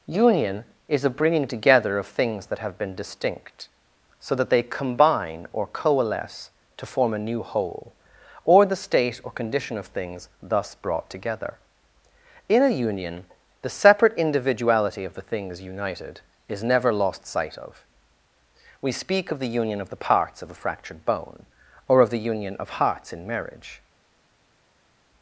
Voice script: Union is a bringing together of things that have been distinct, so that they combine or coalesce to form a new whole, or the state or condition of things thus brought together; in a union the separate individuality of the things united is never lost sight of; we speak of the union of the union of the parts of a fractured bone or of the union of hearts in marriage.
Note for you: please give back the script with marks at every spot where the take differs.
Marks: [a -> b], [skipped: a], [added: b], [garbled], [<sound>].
Union is a bringing together of things that have been distinct, so that they combine or coalesce to form a new whole, or the state or condition of things thus brought together; in a union the separate individuality of the things united is never lost sight of; we speak of the union of the [skipped: union of the] parts of a fractured bone or of the union of hearts in marriage.